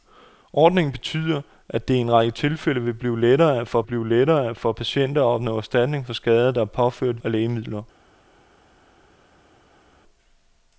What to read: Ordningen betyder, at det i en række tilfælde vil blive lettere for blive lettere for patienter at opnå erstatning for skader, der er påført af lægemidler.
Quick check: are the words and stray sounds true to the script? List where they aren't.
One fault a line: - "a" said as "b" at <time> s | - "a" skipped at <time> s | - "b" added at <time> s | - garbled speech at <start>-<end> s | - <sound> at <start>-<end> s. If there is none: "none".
none